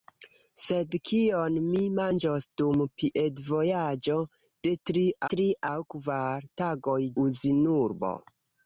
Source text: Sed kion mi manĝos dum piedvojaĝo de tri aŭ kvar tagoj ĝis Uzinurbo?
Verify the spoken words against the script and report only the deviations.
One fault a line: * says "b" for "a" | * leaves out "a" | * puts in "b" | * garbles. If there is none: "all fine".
* puts in "tri"
* leaves out "ĝis"